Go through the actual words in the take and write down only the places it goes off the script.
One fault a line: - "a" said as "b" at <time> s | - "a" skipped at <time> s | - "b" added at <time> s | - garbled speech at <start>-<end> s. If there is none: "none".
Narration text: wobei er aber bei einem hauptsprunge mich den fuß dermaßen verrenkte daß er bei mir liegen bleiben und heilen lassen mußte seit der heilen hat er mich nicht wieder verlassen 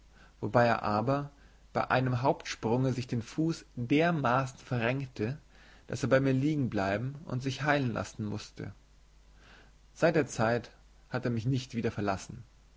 - "mich" said as "sich" at 2.9 s
- "sich" added at 7.4 s
- "heilen" said as "zeit" at 10.3 s